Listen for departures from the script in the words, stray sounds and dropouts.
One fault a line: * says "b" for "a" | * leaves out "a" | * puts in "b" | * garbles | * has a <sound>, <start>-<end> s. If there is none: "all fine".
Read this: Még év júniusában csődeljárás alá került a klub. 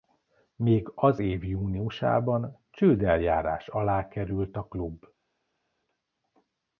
* puts in "az"